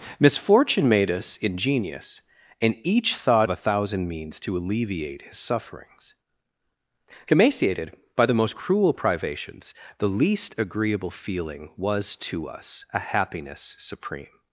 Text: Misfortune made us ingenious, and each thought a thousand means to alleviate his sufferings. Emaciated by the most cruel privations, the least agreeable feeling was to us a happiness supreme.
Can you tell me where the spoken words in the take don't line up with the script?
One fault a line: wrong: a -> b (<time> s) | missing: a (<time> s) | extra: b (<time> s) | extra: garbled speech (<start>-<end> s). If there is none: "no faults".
no faults